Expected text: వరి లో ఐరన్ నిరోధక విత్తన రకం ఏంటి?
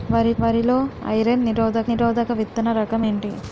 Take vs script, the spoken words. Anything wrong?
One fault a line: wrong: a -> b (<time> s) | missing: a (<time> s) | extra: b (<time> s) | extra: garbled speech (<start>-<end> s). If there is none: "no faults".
extra: వరి (0.4 s)
extra: నిరోధక (1.9 s)